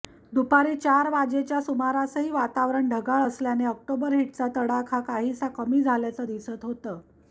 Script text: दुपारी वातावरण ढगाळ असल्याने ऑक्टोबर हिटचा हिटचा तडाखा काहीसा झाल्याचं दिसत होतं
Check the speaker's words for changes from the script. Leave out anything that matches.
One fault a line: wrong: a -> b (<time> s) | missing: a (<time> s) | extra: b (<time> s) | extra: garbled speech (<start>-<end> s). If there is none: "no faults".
extra: चार वाजेच्या सुमारासही (0.8 s)
missing: हिटचा (4.5 s)
extra: कमी (5.5 s)